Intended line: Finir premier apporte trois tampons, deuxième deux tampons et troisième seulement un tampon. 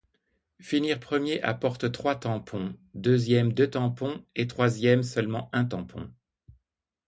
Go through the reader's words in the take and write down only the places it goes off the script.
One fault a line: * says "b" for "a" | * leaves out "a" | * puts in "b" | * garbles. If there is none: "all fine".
all fine